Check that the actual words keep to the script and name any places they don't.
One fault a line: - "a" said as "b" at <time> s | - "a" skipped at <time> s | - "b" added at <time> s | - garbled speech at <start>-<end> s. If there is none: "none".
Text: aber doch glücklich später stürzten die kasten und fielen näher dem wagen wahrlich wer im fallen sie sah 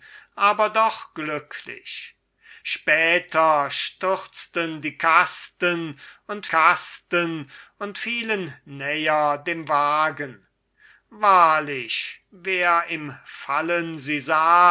- "kasten und" added at 6.5 s